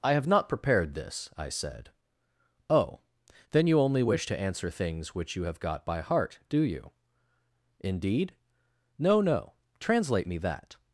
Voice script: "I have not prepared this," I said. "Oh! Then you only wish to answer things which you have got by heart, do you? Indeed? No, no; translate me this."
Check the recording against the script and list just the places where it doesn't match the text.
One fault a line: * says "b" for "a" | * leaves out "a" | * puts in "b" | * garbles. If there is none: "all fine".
* says "that" for "this"